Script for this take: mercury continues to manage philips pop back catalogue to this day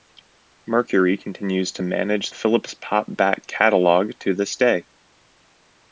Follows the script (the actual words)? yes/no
yes